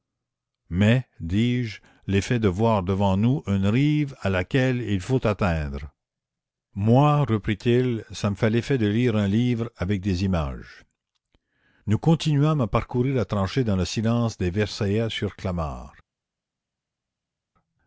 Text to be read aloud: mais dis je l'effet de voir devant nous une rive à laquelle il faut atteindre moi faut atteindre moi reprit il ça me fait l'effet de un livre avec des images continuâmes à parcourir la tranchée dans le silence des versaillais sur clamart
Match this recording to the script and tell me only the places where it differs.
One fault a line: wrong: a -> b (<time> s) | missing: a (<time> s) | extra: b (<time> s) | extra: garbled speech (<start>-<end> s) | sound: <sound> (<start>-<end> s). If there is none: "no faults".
missing: faut atteindre moi (7.2 s)
extra: lire (8.9 s)
extra: nous (11.8 s)